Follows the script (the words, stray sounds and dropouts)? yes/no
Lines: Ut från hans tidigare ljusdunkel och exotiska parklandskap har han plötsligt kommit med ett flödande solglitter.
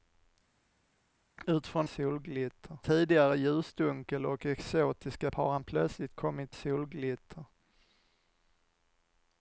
no